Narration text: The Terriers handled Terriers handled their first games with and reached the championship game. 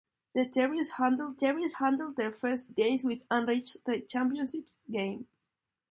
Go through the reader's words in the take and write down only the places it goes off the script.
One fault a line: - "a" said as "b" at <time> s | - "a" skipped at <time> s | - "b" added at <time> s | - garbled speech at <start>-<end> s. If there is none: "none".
none